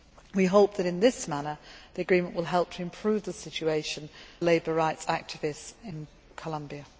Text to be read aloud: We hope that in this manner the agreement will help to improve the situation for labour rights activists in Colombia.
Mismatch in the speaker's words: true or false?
true